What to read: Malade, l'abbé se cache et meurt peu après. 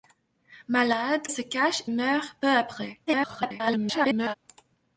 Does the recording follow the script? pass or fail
fail